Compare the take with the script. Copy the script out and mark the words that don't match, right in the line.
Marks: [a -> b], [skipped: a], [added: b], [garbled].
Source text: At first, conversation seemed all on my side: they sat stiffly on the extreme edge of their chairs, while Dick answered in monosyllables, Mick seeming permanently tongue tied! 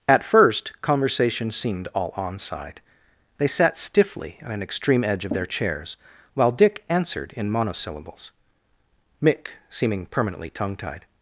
At first, conversation seemed all on [skipped: my] side: they sat stiffly on [the -> an] extreme edge of their chairs, while Dick answered in monosyllables, Mick seeming permanently tongue tied!